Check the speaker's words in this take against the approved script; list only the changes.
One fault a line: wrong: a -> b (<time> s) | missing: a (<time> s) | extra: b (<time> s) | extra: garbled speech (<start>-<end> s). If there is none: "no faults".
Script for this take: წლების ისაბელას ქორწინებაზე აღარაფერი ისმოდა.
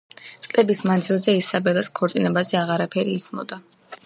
extra: მანძილზე (0.9 s)